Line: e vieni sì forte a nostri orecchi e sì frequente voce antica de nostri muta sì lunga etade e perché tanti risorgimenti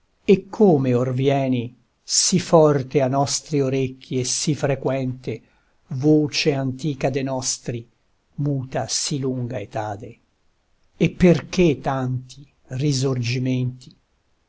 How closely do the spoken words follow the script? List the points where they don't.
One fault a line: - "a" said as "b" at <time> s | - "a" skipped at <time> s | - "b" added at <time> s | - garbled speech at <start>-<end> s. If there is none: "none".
- "come or" added at 0.5 s